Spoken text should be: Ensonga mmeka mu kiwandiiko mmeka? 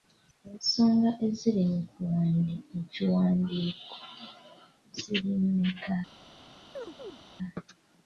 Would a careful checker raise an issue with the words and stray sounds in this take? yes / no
yes